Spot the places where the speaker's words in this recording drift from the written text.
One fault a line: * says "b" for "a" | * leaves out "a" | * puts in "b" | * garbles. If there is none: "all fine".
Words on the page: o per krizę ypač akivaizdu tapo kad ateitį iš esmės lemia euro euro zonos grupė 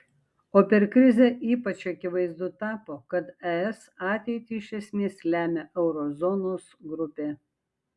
* puts in "es"
* leaves out "euro"